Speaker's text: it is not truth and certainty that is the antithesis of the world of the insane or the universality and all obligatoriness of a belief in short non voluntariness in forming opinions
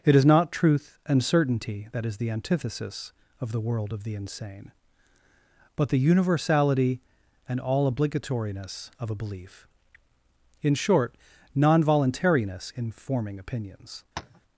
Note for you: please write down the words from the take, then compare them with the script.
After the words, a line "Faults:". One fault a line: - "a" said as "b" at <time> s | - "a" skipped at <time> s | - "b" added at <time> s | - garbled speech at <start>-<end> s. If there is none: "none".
it is not truth and certainty that is the antithesis of the world of the insane but the universality and all obligatoriness of a belief in short non voluntariness in forming opinions
Faults:
- "or" said as "but" at 5.8 s